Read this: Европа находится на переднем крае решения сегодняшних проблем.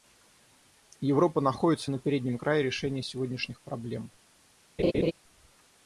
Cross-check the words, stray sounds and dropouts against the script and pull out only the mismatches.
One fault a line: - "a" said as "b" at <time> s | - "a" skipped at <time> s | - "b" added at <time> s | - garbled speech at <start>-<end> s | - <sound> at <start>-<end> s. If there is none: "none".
- laugh at 4.8-5.1 s